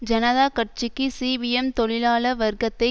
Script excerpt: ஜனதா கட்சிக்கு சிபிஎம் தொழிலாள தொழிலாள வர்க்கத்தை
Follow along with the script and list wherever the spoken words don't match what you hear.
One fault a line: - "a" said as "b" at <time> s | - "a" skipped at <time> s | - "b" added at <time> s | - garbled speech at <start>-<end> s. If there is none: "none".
- "தொழிலாள" skipped at 2.3 s